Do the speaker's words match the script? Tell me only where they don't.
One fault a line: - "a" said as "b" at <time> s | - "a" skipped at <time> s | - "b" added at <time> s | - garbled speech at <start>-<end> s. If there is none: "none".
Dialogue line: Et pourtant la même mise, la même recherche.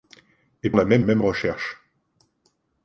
- "pourtant" skipped at 0.7 s
- "mise la" skipped at 1.1 s